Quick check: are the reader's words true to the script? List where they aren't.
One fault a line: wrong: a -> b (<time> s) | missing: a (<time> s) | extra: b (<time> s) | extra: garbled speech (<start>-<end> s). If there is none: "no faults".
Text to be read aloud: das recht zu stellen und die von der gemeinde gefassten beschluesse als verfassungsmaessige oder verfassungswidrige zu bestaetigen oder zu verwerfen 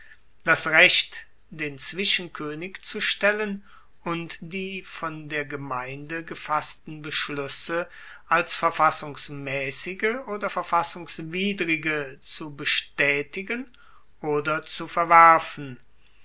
extra: den zwischenkoenig (1.5 s)